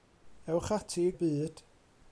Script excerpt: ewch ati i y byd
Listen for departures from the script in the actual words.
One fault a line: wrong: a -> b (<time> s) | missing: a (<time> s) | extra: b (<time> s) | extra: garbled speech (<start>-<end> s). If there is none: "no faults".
no faults